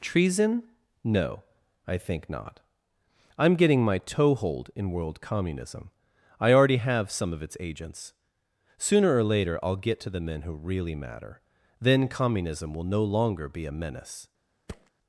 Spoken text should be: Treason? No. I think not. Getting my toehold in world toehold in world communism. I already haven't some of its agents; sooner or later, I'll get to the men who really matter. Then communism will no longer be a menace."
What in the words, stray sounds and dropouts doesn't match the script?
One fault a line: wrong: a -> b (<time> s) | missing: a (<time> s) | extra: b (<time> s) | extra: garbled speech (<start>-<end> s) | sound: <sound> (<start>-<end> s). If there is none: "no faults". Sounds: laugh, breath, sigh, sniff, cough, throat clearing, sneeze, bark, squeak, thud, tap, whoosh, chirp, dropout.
extra: I'm (3.4 s)
missing: toehold in world (5.2 s)
wrong: haven't -> have (6.7 s)
sound: thud (14.7-14.9 s)